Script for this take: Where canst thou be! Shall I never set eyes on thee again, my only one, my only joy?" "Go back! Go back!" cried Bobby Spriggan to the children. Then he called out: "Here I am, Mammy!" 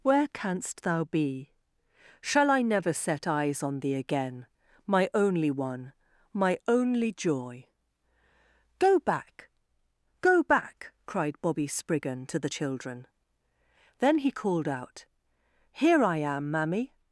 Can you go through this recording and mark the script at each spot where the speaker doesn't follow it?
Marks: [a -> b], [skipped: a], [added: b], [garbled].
Where canst thou be! Shall I never set eyes on thee again, my only one, my only joy?" "Go back! Go back!" cried Bobby Spriggan to the children. Then he called out: "Here I am, Mammy!"